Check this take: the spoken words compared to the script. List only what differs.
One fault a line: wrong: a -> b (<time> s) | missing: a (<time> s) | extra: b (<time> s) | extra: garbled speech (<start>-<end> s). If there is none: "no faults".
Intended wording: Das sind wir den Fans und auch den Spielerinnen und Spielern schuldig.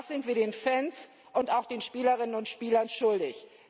no faults